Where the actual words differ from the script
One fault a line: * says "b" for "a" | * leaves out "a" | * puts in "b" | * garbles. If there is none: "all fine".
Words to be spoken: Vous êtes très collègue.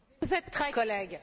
all fine